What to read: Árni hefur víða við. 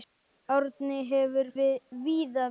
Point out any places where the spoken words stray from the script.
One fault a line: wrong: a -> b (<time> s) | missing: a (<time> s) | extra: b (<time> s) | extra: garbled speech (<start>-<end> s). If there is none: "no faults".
no faults